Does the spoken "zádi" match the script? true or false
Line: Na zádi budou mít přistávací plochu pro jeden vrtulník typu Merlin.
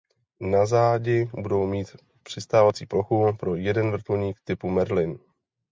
true